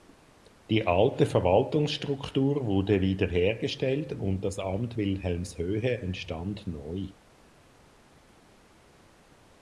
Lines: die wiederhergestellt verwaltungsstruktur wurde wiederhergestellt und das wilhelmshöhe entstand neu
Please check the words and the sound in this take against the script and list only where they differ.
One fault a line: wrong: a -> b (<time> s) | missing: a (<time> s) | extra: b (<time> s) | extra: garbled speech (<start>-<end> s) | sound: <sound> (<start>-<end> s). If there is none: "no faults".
wrong: wiederhergestellt -> alte (0.9 s)
extra: amt (4.6 s)